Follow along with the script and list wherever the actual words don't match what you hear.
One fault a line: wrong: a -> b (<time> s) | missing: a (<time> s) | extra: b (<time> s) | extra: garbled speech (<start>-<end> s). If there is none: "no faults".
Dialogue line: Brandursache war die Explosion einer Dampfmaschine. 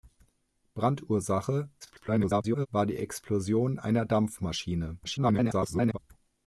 extra: garbled speech (1.8-2.7 s)
extra: garbled speech (5.0-6.0 s)